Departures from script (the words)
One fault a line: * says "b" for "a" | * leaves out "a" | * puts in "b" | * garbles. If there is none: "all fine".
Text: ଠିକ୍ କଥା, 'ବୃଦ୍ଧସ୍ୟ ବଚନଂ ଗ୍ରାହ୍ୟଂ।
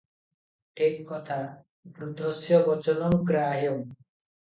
all fine